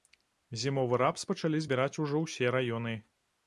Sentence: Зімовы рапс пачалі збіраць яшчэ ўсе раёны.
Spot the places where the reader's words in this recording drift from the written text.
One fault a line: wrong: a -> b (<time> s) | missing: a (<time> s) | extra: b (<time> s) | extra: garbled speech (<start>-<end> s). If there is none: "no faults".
wrong: яшчэ -> ужо (2.1 s)